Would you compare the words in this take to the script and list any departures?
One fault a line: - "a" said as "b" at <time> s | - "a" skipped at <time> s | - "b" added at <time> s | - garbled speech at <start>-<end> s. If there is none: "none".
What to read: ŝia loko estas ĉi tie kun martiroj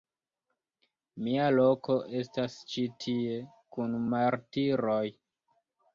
- "ŝia" said as "mia" at 1.2 s